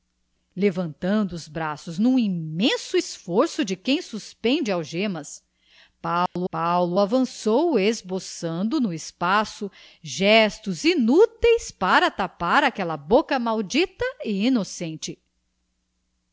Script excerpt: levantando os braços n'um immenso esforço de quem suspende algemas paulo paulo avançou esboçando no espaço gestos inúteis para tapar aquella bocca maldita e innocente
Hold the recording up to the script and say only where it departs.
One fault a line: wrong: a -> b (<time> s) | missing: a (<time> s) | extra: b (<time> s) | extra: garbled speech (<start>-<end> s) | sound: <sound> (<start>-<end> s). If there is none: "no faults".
sound: dropout (6.3-6.4 s)